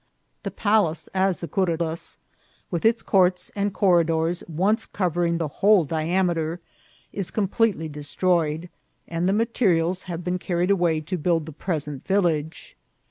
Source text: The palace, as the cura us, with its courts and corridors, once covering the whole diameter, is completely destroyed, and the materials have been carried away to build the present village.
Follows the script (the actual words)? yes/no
yes